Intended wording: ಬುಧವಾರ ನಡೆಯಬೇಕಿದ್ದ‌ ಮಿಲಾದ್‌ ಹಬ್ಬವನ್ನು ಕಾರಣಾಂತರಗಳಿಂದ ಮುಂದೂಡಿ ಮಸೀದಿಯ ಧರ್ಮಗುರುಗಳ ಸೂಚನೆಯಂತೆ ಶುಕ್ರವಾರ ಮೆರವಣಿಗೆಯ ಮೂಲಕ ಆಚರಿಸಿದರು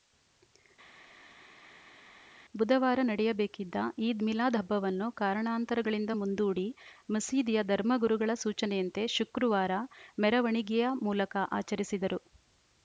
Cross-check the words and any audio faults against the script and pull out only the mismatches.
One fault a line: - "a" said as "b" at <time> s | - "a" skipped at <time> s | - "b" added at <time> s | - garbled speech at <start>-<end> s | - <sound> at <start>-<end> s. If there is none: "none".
- "ಈದ್" added at 4.1 s